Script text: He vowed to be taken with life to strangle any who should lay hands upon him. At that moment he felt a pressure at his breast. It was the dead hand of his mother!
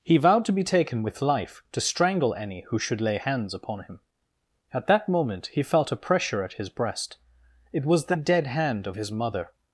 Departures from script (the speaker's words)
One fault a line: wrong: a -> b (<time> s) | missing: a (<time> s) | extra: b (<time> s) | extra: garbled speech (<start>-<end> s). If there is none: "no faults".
no faults